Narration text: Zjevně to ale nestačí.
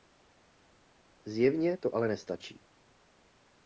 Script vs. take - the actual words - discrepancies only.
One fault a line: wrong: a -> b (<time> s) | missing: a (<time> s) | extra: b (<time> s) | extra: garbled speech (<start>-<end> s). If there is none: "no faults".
no faults